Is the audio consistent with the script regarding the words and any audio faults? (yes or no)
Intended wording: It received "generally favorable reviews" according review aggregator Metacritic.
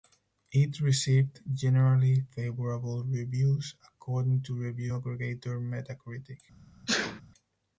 no